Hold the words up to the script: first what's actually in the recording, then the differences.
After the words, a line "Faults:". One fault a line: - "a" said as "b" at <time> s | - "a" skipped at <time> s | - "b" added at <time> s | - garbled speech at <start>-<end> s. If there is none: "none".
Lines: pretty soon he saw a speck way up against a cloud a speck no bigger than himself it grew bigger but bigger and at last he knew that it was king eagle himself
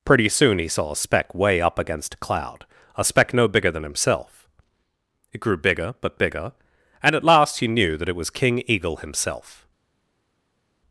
pretty soon he saw a speck way up against a cloud a speck no bigger than himself it grew bigger but bigger and at last he knew that it was king eagle himself
Faults:
none